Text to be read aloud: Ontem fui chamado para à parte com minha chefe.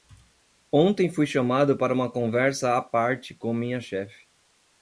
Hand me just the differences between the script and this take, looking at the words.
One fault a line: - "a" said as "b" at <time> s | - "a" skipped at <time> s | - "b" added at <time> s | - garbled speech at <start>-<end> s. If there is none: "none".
- "uma conversa" added at 1.9 s